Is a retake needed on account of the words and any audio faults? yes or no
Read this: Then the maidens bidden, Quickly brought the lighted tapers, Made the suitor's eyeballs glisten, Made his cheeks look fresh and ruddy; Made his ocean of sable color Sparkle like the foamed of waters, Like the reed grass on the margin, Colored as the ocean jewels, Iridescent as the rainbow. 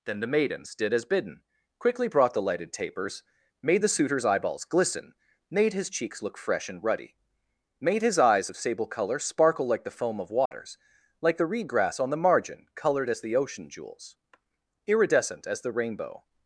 yes